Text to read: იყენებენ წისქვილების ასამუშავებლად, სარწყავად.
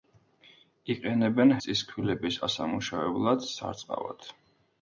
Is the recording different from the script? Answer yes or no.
no